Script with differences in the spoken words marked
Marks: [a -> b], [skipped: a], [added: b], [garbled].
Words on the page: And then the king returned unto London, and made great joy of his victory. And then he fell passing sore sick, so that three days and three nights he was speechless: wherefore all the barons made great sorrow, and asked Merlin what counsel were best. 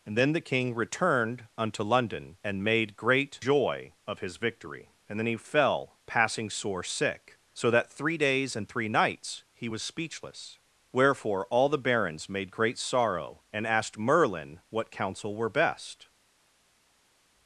And then the king returned unto London, and made great joy of his victory. And then he fell passing sore sick, so that three days and three nights he was speechless: wherefore all the barons made great sorrow, and asked Merlin what counsel were best.